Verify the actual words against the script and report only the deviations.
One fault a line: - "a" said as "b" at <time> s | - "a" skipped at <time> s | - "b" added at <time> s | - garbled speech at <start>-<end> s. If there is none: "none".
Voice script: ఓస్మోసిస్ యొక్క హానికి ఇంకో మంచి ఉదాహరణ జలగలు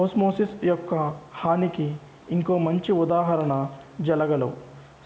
none